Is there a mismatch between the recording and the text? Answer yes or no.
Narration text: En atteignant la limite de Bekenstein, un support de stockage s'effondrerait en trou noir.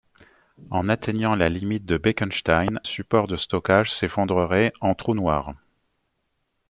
yes